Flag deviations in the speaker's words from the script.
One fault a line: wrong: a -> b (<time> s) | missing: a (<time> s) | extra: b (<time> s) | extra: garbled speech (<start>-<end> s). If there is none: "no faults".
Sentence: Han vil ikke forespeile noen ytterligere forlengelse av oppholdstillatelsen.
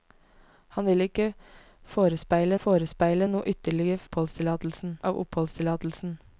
extra: forespeile (2.6 s)
wrong: forlengelse -> oppholdstillatelsen (4.0 s)